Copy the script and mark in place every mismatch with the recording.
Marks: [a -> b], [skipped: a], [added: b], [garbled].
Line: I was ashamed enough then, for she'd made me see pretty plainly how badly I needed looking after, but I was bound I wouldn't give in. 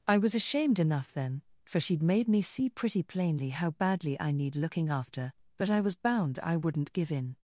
I was ashamed enough then, for she'd made me see pretty plainly how badly I [needed -> need] looking after, but I was bound I wouldn't give in.